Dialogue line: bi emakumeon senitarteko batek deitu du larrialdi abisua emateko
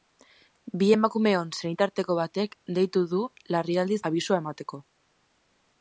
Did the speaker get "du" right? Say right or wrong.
right